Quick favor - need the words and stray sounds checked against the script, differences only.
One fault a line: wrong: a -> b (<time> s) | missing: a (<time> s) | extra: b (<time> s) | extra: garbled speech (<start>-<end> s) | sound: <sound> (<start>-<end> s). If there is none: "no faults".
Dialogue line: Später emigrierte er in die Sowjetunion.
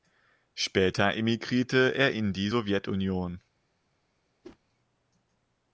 sound: whoosh (4.4-4.6 s)